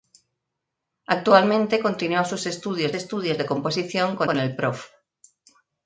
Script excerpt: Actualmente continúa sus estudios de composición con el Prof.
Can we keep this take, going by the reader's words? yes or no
no